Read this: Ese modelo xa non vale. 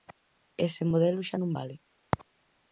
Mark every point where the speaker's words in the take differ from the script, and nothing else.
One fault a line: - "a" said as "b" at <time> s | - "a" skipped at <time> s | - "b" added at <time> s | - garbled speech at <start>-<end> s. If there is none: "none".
none